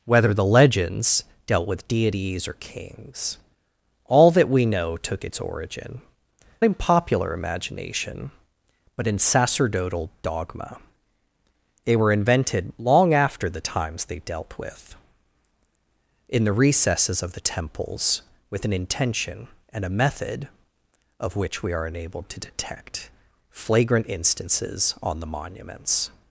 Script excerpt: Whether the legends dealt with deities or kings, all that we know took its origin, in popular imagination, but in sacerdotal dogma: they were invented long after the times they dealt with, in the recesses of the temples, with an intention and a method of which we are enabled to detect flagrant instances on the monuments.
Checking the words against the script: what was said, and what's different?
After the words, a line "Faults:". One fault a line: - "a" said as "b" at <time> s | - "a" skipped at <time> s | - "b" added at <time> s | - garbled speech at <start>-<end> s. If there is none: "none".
Whether the legends dealt with deities or kings, all that we know took its origin, in popular imagination, but in sacerdotal dogma: they were invented long after the times they dealt with, in the recesses of the temples, with an intention and a method of which we are enabled to detect flagrant instances on the monuments.
Faults:
none